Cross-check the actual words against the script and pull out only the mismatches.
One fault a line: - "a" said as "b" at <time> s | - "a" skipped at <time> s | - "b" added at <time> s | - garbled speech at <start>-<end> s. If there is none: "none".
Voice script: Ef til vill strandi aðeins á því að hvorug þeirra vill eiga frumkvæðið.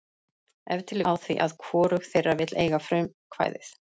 - "vill strandi aðeins" skipped at 1.0 s